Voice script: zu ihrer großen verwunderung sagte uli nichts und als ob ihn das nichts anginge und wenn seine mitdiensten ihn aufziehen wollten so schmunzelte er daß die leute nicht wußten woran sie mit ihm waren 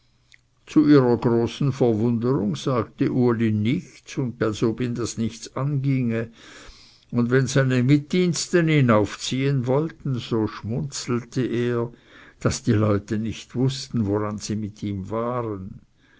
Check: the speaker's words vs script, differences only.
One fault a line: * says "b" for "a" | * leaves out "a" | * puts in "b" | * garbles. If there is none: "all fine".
all fine